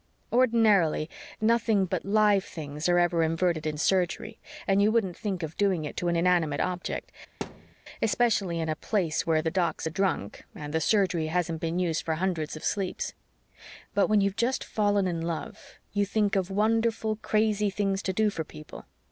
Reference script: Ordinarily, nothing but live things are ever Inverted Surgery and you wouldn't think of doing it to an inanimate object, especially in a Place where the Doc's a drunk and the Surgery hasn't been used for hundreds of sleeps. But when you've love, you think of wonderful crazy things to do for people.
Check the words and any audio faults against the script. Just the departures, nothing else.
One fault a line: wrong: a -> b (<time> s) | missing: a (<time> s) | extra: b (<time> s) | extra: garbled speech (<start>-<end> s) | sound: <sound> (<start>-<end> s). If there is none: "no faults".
extra: in (3.7 s)
sound: thud (7.4-7.8 s)
extra: just fallen in (14.4 s)